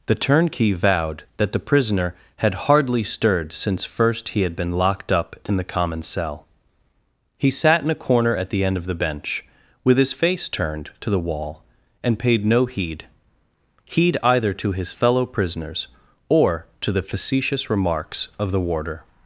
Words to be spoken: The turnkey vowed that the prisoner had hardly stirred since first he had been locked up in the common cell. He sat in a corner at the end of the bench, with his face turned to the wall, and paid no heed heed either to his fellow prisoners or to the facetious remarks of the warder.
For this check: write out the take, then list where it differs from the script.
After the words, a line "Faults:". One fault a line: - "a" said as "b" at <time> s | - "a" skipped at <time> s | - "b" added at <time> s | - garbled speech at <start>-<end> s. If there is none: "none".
The turnkey vowed that the prisoner had hardly stirred since first he had been locked up in the common cell. He sat in a corner at the end of the bench, with his face turned to the wall, and paid no heed heed either to his fellow prisoners or to the facetious remarks of the warder.
Faults:
none